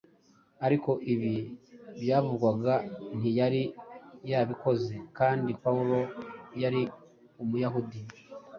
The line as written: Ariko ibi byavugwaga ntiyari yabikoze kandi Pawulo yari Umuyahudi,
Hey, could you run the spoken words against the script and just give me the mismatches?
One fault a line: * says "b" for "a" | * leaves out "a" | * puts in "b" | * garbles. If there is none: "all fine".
all fine